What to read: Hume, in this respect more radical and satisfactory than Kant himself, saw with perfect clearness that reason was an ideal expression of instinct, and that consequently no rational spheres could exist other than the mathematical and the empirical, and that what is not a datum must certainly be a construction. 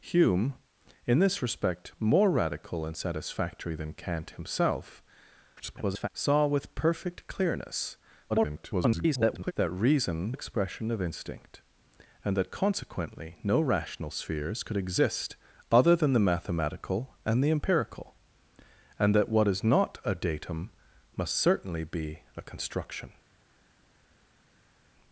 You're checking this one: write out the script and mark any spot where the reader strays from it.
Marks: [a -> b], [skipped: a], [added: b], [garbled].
Hume, in this respect more radical and satisfactory than Kant himself, [garbled] saw with perfect clearness [garbled] that reason [skipped: was an ideal] expression of instinct, and that consequently no rational spheres could exist other than the mathematical and the empirical, and that what is not a datum must certainly be a construction.